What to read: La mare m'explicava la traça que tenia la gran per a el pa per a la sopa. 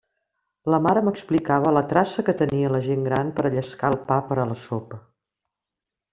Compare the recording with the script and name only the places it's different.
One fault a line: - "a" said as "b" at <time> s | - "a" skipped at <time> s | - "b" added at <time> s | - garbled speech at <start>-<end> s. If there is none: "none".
- "gent" added at 2.9 s
- "llescar" added at 3.6 s